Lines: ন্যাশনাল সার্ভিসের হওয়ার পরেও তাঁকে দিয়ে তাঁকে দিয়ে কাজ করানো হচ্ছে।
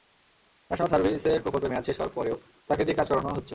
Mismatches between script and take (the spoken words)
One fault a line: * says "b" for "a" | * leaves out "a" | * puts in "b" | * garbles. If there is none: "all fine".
* puts in "প্রকল্পের মেয়াদ শেষ"
* leaves out "তাঁকে দিয়ে"